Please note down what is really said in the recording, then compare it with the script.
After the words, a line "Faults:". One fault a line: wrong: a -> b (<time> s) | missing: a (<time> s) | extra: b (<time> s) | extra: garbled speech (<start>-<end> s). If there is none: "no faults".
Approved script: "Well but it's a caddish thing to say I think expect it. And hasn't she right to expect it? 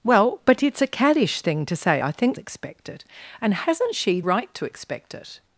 "Well but it's a caddish thing to say I think expect it. And hasn't she right to expect it?
Faults:
no faults